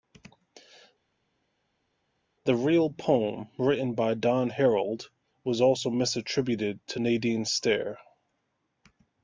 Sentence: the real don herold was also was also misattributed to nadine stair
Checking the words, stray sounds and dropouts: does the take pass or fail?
fail